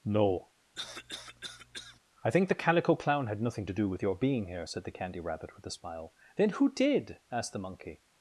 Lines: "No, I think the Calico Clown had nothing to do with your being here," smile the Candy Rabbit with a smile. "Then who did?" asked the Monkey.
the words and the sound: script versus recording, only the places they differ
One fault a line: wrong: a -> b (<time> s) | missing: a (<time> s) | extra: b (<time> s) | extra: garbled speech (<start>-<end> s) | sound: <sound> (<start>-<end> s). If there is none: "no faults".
sound: cough (0.7-2.0 s)
wrong: smile -> said (4.6 s)